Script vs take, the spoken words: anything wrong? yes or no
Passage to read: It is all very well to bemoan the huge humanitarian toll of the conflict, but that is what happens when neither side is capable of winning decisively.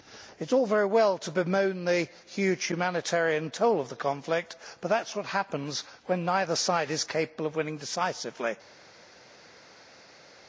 no